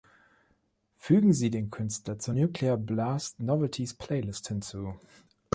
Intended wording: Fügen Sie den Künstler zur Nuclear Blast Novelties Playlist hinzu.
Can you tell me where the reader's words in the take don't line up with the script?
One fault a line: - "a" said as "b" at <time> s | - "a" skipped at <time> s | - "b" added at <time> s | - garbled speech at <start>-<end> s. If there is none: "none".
none